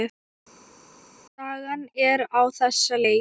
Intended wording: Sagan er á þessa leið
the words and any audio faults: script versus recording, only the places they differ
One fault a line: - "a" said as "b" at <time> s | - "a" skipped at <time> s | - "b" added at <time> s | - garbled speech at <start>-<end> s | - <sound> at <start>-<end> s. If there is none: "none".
none